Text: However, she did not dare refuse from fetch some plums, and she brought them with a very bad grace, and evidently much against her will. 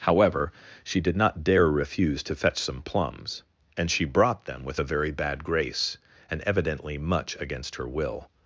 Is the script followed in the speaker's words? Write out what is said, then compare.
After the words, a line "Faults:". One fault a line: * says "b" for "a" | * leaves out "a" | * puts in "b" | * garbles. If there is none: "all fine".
However, she did not dare refuse to fetch some plums, and she brought them with a very bad grace, and evidently much against her will.
Faults:
* says "to" for "from"